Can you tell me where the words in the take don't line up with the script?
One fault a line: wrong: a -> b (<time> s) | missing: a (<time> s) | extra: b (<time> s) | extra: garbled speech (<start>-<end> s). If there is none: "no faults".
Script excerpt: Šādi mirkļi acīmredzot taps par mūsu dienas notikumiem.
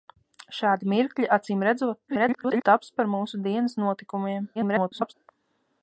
extra: garbled speech (2.1-2.6 s)
extra: garbled speech (4.5-5.1 s)